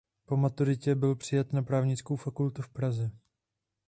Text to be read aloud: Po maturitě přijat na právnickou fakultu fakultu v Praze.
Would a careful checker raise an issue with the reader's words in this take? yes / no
yes